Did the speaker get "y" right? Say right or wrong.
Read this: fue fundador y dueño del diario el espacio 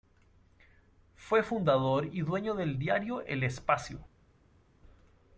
right